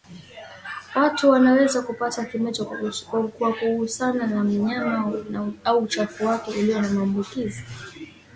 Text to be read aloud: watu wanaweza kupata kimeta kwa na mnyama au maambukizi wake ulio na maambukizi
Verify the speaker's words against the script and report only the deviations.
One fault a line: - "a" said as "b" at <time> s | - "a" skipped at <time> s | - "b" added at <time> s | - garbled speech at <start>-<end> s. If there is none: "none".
- "kugusana" added at 3.5 s
- "maambukizi" said as "uchafu" at 5.8 s